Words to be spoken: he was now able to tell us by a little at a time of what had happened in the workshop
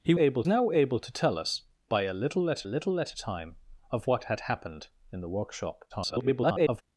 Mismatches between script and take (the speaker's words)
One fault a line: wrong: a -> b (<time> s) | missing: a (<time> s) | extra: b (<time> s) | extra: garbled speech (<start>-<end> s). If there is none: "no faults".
wrong: was -> able (0.1 s)
extra: little at (2.7 s)
extra: garbled speech (5.9-6.8 s)